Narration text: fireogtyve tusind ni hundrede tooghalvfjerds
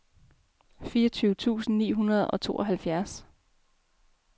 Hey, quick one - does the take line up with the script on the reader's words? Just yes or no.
no